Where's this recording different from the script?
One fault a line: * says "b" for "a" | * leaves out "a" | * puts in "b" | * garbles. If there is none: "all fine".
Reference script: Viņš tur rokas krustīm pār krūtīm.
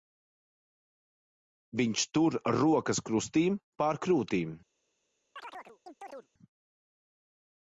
all fine